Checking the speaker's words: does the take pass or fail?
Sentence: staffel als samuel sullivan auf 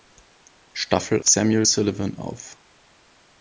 fail